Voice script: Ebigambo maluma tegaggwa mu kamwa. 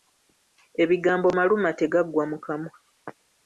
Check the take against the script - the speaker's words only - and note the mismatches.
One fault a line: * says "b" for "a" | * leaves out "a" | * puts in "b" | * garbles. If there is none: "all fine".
all fine